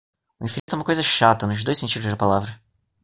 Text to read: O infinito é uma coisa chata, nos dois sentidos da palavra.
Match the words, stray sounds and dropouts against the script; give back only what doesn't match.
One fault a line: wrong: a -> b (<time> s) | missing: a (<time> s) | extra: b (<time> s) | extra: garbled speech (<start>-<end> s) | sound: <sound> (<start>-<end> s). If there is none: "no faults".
sound: dropout (0.6-0.7 s)